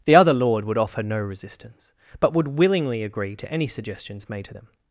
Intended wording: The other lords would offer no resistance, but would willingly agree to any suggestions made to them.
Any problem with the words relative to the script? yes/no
yes